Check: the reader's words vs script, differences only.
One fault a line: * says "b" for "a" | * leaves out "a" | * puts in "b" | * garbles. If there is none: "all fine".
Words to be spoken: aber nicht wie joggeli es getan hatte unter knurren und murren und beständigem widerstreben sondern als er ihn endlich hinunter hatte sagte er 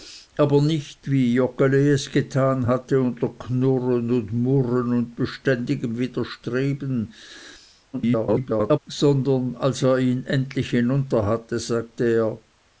* garbles